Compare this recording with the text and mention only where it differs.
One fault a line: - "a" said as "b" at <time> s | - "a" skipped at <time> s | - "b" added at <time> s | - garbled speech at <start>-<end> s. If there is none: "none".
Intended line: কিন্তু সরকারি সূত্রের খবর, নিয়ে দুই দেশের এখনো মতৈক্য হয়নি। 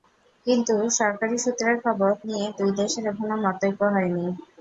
none